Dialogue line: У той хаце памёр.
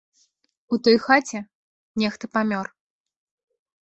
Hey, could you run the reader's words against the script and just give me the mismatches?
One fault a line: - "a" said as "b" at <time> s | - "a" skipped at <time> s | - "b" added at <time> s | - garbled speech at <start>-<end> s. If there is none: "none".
- "нехта" added at 2.0 s